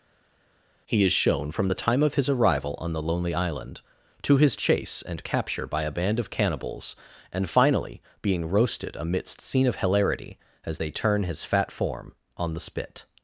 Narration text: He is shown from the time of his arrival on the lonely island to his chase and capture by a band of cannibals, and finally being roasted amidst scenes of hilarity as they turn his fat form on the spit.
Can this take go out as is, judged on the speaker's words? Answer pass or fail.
fail